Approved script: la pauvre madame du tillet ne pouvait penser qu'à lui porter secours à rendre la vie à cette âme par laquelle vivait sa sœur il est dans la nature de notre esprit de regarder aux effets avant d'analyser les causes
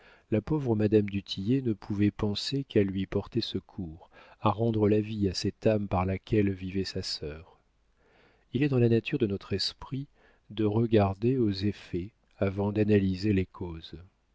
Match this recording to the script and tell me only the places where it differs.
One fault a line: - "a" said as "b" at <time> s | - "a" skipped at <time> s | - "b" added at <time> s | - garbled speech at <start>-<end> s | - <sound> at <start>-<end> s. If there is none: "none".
none